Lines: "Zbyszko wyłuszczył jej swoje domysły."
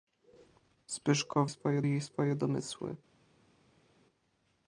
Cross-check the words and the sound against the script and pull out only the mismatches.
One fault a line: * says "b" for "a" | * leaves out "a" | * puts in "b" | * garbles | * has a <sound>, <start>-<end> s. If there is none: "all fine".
* says "swoje" for "wyłuszczył"